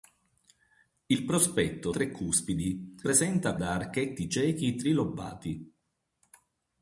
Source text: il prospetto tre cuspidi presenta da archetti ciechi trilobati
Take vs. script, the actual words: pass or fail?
pass